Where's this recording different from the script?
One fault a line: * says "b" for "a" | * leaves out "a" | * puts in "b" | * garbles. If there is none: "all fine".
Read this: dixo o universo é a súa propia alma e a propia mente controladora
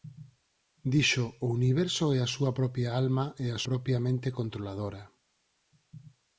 all fine